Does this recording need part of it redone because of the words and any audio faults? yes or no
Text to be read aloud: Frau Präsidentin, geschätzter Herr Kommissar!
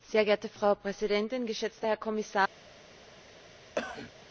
yes